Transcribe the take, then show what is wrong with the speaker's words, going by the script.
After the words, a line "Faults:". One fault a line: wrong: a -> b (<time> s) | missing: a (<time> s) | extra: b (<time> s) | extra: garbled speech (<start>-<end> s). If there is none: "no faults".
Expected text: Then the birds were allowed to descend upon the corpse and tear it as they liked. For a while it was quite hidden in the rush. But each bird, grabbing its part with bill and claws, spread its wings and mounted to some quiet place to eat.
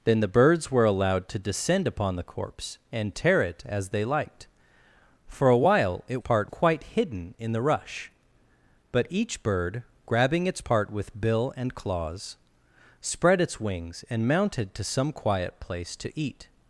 Then the birds were allowed to descend upon the corpse and tear it as they liked. For a while it part quite hidden in the rush. But each bird, grabbing its part with bill and claws, spread its wings and mounted to some quiet place to eat.
Faults:
wrong: was -> part (6.2 s)